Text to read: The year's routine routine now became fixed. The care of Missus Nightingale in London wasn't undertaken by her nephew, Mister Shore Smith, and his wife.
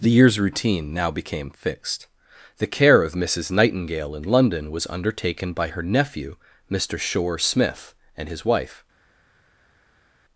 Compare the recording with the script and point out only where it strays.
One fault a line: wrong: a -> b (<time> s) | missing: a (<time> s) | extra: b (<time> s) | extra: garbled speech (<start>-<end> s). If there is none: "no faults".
missing: routine (0.9 s)
wrong: wasn't -> was (4.7 s)